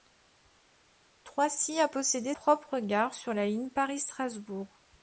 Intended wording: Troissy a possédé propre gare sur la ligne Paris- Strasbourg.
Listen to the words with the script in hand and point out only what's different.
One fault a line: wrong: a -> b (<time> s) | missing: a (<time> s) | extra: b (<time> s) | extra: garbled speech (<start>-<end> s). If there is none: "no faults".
no faults